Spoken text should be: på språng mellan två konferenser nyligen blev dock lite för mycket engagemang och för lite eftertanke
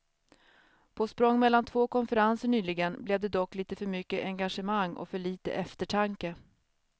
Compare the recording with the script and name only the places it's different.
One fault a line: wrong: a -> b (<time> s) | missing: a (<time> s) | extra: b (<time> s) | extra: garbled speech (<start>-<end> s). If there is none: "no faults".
extra: det (3.2 s)